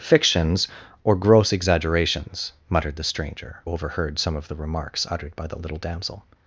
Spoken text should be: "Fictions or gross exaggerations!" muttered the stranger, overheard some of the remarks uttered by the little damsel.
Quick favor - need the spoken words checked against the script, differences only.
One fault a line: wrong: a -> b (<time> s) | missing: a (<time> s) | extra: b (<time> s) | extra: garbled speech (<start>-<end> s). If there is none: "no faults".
no faults